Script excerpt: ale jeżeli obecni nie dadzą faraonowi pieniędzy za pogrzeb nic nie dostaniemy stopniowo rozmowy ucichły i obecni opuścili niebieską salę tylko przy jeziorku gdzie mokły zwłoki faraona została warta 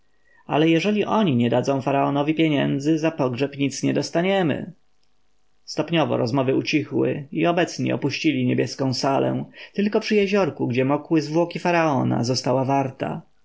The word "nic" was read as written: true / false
true